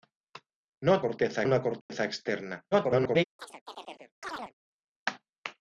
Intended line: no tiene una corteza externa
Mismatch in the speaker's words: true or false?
true